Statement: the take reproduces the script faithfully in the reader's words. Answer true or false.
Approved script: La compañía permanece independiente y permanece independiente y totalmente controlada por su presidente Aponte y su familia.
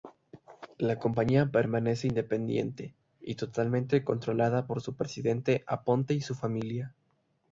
false